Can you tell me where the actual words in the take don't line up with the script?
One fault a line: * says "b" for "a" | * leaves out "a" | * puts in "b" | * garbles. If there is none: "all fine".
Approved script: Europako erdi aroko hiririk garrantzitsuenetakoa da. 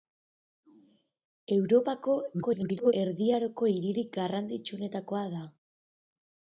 * garbles